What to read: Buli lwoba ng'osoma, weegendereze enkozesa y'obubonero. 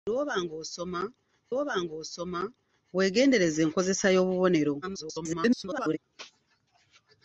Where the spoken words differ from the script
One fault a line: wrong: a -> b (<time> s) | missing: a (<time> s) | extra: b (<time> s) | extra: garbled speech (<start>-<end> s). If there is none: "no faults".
extra: lwoba ng'osoma (1.5 s)
extra: garbled speech (4.8-6.0 s)